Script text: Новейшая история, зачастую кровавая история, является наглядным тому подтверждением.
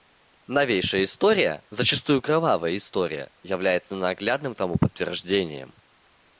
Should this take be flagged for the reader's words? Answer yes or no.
no